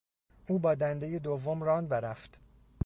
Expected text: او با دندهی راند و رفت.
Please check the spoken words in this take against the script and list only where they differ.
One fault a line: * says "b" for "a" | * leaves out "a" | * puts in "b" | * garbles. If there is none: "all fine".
* puts in "دوم"